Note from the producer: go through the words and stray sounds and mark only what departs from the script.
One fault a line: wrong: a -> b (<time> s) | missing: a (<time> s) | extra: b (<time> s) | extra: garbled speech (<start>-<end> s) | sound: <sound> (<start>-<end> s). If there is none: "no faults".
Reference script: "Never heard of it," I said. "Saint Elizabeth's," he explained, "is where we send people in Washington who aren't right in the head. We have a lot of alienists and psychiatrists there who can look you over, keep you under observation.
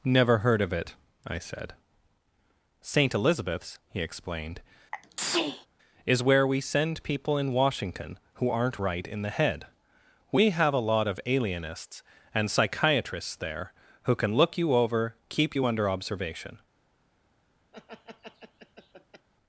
sound: sneeze (4.9-5.7 s)
sound: laugh (17.7-19.3 s)